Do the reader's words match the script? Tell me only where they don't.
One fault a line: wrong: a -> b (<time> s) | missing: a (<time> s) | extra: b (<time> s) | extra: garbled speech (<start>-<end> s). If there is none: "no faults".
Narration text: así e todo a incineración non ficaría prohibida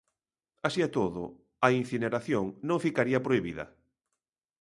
no faults